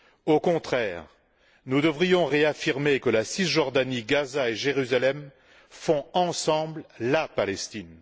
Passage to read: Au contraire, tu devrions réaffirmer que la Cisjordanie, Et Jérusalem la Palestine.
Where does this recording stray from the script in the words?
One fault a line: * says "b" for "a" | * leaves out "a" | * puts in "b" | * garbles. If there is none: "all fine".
* says "nous" for "tu"
* puts in "Gaza"
* puts in "font ensemble"